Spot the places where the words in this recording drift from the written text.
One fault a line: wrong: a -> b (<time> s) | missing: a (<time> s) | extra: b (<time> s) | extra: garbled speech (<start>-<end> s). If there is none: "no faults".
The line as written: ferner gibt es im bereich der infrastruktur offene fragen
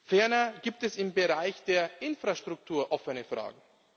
no faults